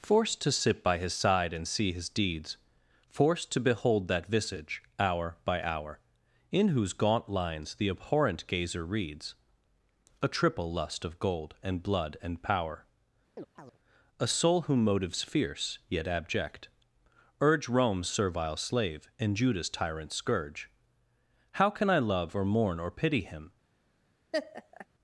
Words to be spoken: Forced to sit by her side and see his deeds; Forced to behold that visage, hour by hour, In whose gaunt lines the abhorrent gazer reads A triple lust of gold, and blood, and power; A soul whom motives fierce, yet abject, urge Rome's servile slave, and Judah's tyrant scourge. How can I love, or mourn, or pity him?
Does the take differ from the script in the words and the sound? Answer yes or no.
yes